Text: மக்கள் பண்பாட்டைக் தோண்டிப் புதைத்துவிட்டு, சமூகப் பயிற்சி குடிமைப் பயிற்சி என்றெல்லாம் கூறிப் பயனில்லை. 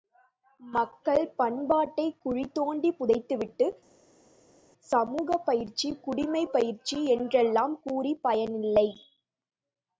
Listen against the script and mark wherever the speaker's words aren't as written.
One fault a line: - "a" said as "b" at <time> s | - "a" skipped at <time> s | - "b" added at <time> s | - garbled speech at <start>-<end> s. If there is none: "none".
- "குழி" added at 2.2 s